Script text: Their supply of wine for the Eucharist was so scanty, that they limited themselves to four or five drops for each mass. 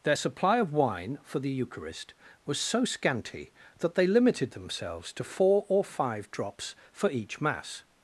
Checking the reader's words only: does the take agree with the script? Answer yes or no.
yes